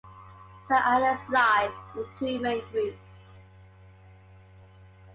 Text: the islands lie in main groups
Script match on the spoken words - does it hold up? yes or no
no